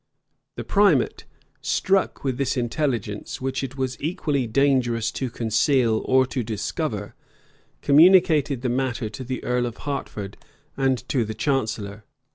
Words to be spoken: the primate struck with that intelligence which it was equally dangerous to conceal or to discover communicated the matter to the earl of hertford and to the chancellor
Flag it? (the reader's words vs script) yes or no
yes